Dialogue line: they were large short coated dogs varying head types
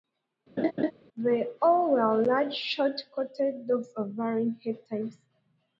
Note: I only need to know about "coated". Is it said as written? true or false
true